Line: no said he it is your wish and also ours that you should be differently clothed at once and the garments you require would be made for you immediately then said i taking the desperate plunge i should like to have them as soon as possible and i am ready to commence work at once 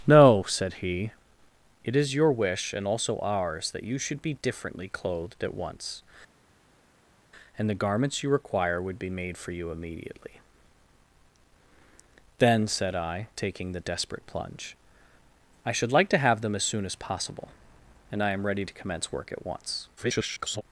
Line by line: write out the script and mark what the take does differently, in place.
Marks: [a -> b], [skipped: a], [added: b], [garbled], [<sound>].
no said he it is your wish and also ours that you should be differently clothed at once and the garments you require would be made for you immediately then said i taking the desperate plunge i should like to have them as soon as possible and i am ready to commence work at once [garbled]